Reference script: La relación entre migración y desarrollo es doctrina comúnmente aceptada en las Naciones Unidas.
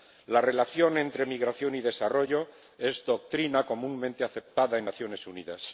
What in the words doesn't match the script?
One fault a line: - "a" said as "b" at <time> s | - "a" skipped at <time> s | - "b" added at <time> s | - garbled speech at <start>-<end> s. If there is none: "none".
none